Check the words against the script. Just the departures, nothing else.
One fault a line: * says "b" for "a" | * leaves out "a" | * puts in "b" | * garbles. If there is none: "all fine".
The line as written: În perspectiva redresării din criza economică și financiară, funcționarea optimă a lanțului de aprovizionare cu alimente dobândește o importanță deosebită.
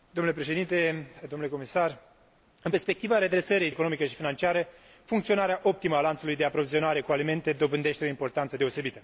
* leaves out "din criza"